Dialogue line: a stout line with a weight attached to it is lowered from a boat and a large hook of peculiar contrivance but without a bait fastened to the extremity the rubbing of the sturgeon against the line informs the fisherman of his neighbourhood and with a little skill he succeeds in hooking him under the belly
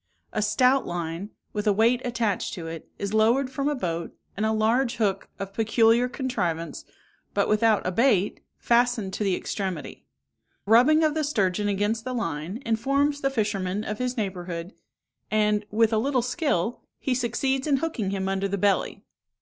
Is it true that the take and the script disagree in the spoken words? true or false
true